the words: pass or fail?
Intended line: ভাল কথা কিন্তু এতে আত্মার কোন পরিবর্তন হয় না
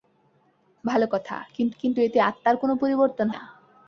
fail